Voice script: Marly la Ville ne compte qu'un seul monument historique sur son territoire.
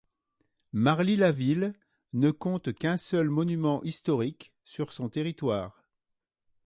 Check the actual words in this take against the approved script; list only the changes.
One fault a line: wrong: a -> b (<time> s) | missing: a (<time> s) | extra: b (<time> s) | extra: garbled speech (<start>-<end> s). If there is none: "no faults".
no faults